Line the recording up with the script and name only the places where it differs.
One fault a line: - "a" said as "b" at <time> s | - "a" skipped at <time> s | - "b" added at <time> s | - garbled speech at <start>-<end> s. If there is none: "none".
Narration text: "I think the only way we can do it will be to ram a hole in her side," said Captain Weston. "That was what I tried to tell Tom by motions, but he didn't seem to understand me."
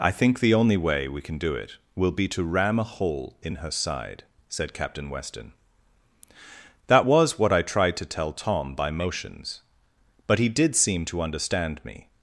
- "didn't" said as "did" at 10.5 s